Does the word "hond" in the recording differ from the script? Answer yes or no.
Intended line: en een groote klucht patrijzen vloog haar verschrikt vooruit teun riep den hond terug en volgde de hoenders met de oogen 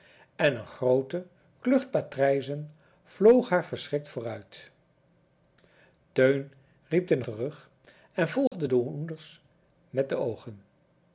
yes